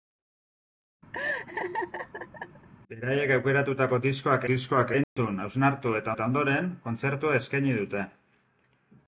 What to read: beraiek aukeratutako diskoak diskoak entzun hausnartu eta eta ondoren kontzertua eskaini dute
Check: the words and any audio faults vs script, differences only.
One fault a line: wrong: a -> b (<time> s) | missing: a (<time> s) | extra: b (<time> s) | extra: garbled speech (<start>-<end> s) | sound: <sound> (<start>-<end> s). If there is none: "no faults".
sound: laugh (1.1-2.7 s)
sound: dropout (5.0-5.2 s)